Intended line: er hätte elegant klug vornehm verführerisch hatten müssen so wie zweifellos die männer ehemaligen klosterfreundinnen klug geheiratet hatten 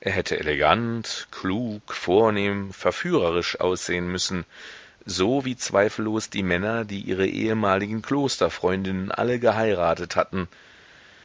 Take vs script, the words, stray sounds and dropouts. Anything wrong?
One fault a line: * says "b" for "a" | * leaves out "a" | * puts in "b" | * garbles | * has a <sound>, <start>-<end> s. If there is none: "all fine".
* says "aussehen" for "hatten"
* puts in "die ihre"
* says "alle" for "klug"